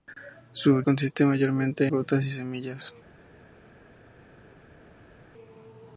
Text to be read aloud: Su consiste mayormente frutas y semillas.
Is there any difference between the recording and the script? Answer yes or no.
no